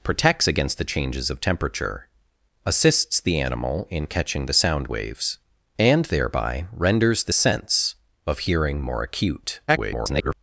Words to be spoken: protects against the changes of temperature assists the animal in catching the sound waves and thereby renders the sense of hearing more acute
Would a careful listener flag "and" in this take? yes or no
no